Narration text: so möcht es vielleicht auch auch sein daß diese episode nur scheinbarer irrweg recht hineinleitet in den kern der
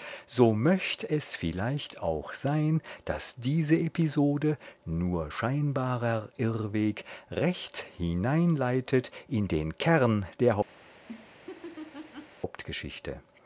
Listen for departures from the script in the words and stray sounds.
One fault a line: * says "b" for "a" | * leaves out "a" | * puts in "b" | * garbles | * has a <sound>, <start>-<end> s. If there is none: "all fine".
* leaves out "auch"
* has a laugh, 10.8-12.4 s